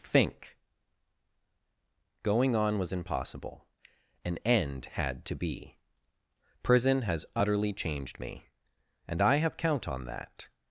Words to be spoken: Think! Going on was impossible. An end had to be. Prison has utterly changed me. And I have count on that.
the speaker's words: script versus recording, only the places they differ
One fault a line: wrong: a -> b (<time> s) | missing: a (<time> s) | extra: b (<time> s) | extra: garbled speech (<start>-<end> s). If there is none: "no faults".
no faults